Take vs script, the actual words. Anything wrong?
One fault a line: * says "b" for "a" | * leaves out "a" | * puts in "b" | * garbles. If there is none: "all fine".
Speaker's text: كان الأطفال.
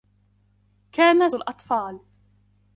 all fine